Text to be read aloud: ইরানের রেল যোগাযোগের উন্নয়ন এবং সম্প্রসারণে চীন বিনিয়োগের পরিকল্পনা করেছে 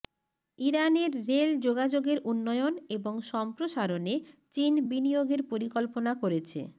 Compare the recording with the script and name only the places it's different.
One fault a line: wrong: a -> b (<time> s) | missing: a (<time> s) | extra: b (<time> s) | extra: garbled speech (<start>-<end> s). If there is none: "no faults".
no faults